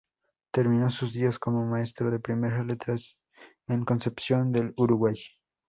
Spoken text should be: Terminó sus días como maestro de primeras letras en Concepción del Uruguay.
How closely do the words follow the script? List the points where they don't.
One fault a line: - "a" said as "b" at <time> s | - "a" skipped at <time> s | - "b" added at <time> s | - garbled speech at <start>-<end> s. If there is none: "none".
none